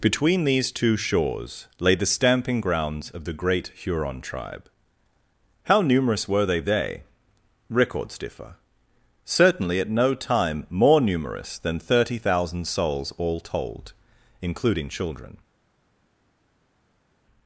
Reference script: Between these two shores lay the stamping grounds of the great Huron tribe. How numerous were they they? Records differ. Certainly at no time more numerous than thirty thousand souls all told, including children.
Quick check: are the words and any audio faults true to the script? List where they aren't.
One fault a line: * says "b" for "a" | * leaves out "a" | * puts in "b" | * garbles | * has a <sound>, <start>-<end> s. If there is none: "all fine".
all fine